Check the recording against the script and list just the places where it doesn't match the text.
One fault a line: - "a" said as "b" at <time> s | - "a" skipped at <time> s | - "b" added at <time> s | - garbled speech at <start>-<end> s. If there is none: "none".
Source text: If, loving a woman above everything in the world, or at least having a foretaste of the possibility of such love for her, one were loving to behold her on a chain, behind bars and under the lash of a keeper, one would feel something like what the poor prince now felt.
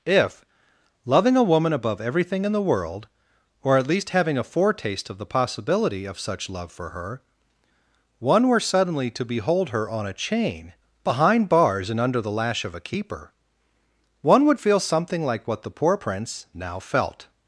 - "loving" said as "suddenly" at 8.6 s